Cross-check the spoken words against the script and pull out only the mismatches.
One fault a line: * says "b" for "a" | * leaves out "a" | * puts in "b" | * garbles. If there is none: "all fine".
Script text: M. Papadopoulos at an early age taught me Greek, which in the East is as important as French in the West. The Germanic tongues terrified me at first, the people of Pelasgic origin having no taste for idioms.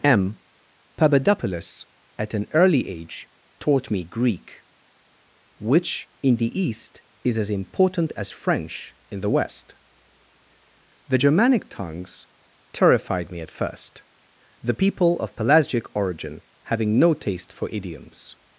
all fine